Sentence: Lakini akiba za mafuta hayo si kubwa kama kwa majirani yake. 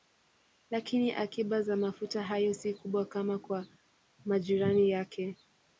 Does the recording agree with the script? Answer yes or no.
yes